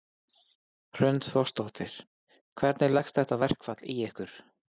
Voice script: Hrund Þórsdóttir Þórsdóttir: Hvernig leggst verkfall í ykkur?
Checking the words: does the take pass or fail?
fail